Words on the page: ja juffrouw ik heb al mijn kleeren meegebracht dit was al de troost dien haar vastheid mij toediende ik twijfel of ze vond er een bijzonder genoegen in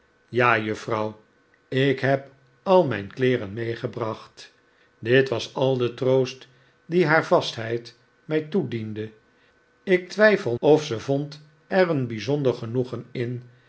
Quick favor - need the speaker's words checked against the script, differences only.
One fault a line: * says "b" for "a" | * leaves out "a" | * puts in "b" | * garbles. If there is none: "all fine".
all fine